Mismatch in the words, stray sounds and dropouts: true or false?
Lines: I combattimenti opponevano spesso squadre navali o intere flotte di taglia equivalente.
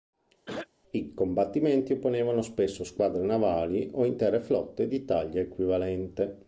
true